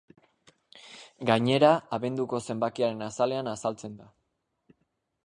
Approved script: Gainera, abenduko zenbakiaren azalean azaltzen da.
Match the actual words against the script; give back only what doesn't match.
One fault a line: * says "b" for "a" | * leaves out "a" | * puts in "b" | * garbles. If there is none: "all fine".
all fine